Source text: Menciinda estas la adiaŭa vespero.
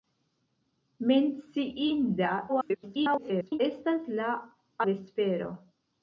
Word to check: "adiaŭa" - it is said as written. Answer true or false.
false